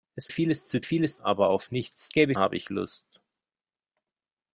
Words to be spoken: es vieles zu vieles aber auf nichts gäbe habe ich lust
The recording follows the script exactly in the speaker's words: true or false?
true